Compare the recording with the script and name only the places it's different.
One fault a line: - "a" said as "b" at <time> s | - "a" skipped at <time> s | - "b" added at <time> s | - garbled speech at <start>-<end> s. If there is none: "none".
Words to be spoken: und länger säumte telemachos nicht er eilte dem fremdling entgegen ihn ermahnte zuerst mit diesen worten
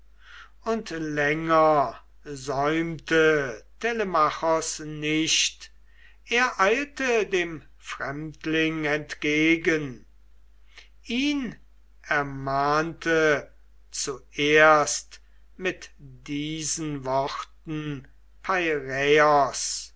none